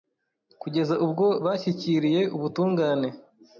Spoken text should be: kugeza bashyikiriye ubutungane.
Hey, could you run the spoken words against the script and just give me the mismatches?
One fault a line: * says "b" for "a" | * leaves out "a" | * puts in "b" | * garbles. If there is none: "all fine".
* puts in "ubwo"